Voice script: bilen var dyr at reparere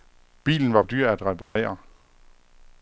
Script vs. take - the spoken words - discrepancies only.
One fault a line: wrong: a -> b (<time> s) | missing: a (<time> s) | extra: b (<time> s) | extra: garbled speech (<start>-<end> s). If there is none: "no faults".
no faults